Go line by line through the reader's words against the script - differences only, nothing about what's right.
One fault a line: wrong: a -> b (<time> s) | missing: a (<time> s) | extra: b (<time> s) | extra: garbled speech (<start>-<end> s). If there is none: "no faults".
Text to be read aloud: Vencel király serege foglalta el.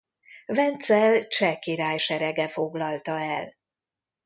extra: cseh (1.3 s)